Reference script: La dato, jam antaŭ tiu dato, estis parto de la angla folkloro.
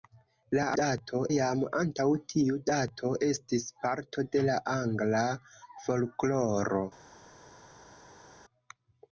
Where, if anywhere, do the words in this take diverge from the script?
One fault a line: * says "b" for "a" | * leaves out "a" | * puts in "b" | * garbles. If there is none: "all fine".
all fine